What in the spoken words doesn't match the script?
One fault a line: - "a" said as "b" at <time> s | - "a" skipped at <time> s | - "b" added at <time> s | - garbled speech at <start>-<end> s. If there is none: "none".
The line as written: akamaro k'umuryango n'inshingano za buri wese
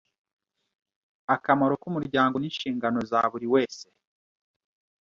none